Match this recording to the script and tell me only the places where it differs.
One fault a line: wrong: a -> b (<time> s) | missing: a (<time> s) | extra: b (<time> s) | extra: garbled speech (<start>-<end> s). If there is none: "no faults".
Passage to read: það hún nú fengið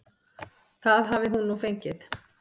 extra: hafi (1.1 s)